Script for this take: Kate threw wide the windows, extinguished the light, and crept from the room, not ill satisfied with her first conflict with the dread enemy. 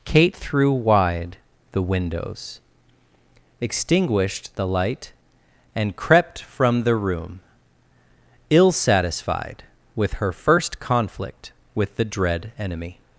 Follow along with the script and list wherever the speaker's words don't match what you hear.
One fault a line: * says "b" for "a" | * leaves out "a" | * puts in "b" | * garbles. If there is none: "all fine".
* leaves out "not"